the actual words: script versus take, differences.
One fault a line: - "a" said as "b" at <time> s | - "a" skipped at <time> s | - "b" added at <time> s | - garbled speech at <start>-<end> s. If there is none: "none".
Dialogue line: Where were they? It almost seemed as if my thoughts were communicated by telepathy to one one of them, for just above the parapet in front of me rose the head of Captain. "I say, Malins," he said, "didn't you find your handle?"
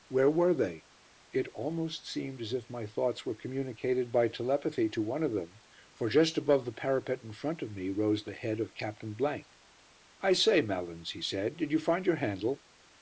- "one" skipped at 5.2 s
- "didn't" said as "did" at 11.6 s